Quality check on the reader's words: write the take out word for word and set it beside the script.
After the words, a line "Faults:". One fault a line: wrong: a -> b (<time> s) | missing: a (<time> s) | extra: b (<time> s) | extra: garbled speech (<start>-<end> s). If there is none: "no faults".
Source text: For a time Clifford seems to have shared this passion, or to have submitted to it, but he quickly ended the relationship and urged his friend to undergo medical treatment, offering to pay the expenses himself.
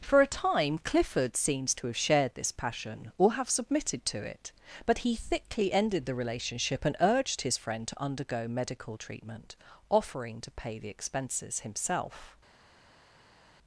For a time Clifford seems to have shared this passion, or have submitted to it, but he thickly ended the relationship and urged his friend to undergo medical treatment, offering to pay the expenses himself.
Faults:
missing: to (3.3 s)
wrong: quickly -> thickly (5.2 s)